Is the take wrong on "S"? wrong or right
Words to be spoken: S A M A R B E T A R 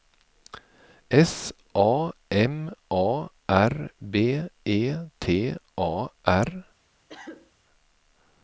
right